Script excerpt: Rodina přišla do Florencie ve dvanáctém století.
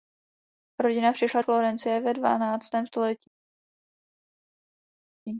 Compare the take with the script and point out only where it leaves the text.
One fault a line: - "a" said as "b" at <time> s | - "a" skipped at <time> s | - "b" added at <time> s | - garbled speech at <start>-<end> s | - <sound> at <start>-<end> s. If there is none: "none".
- "do" skipped at 1.4 s